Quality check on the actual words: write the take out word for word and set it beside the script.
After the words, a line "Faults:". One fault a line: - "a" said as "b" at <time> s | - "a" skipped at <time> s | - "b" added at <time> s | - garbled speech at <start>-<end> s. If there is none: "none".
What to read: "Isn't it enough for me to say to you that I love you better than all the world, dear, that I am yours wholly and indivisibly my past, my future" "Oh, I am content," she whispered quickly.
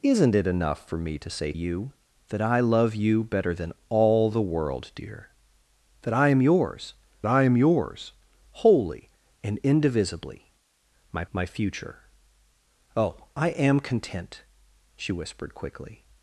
"Isn't it enough for me to say you that I love you better than all the world, dear, that I am yours I am yours wholly and indivisibly my my future" "Oh, I am content," she whispered quickly.
Faults:
- "to" skipped at 1.5 s
- "I am yours" added at 7.3 s
- "past" skipped at 11.3 s